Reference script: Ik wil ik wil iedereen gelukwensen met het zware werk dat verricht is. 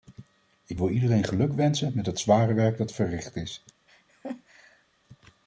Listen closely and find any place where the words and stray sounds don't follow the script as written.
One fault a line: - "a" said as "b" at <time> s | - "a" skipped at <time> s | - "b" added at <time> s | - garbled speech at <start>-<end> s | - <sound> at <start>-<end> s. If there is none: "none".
- "ik wil" skipped at 0.9 s
- laugh at 3.9-4.9 s